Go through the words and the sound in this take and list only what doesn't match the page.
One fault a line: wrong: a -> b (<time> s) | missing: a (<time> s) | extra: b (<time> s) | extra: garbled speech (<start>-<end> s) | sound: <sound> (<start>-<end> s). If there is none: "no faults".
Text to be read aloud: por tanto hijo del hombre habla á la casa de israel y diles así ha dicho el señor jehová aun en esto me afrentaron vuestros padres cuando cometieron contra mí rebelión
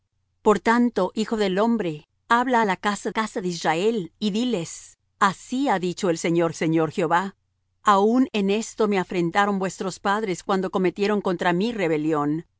extra: casa (3.1 s)
extra: señor (6.5 s)